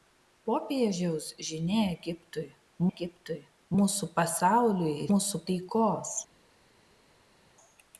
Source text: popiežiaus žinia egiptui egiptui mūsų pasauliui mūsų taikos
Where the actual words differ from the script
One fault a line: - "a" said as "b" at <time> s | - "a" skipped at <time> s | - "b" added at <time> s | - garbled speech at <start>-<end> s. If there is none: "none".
none